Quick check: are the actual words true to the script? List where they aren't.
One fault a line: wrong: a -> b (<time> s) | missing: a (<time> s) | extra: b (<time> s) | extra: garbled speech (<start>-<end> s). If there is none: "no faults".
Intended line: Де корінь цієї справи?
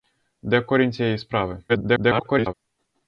extra: garbled speech (1.7-2.5 s)